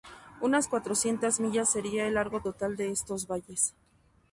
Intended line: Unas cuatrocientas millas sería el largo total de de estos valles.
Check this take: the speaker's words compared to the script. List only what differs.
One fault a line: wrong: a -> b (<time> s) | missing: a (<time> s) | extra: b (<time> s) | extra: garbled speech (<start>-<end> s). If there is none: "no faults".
missing: de (2.9 s)